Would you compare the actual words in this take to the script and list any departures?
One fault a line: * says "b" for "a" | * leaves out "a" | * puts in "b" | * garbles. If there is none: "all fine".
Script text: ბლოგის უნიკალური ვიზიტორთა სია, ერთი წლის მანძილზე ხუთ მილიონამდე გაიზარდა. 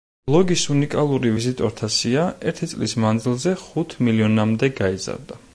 all fine